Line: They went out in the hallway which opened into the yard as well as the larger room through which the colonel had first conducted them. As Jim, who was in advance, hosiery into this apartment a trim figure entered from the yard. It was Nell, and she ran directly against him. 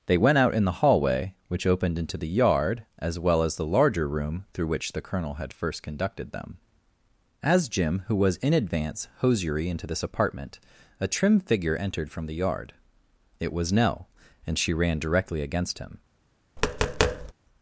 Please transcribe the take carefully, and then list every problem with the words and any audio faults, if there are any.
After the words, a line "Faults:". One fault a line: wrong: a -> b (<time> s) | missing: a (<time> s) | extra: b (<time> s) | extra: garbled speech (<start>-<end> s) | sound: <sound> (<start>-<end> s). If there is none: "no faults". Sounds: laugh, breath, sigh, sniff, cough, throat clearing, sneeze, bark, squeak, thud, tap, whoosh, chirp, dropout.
They went out in the hallway which opened into the yard as well as the larger room through which the colonel had first conducted them. As Jim, who was in advance, hosiery into this apartment a trim figure entered from the yard. It was Nell, and she ran directly against him.
Faults:
sound: tap (16.6-17.3 s)